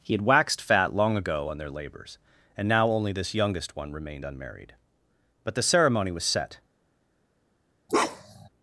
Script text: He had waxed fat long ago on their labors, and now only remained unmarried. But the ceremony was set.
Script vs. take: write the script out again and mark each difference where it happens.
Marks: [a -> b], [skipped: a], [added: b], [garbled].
He had waxed fat long ago on their labors, and now only [added: this youngest one] remained unmarried. But the ceremony was set.